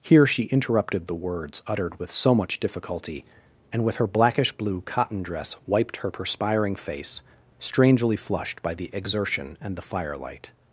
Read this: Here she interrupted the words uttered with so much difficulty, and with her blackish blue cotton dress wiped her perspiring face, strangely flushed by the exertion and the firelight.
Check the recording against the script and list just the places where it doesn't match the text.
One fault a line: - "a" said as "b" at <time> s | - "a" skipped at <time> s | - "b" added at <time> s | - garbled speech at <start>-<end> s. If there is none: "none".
none